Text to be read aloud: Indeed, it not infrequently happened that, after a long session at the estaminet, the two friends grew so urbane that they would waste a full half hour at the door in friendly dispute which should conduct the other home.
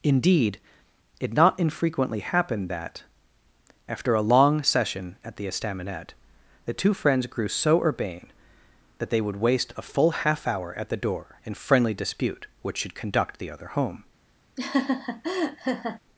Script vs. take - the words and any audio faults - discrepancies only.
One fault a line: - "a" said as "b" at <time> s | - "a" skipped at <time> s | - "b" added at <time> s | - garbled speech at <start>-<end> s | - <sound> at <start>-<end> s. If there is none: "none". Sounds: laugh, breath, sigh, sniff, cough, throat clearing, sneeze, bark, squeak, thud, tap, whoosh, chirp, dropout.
- laugh at 14.6-16.0 s